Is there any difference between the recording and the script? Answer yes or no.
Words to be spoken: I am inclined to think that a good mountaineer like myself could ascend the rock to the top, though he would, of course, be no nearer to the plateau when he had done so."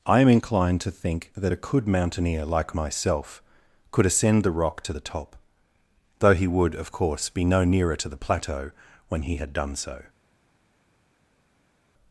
yes